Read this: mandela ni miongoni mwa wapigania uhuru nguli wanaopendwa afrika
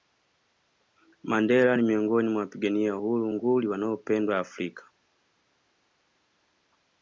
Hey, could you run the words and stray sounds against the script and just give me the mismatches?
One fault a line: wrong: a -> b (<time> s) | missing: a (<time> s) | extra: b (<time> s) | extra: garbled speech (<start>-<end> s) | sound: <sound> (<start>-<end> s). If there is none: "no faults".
no faults